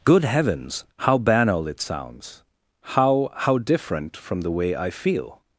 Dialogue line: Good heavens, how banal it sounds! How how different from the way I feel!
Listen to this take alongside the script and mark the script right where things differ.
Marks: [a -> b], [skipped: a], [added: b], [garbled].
Good heavens, how banal it sounds! How how different from the way I feel!